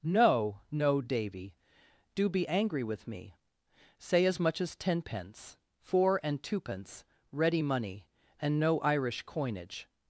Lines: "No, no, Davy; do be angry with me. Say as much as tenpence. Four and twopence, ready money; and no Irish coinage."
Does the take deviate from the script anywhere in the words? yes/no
no